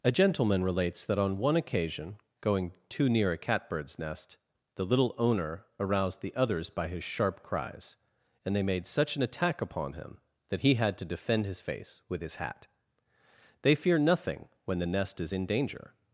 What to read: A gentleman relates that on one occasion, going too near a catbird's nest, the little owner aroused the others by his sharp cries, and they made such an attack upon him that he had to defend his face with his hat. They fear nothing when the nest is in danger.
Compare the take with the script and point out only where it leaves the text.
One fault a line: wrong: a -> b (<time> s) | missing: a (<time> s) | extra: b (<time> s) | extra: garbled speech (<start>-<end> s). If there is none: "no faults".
no faults